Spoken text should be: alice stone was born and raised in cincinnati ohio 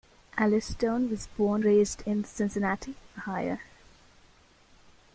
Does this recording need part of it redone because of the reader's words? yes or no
yes